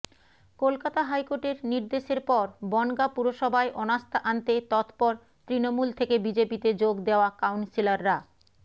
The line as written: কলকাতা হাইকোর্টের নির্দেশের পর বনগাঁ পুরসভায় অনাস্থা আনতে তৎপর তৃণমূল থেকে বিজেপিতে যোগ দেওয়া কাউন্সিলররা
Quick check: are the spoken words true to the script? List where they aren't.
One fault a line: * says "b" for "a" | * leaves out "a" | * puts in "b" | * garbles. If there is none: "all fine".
all fine